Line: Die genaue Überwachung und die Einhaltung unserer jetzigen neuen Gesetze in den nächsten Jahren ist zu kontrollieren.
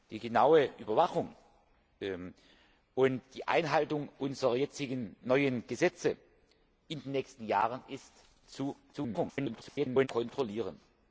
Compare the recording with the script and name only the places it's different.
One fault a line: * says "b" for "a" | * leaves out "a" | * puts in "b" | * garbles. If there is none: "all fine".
* garbles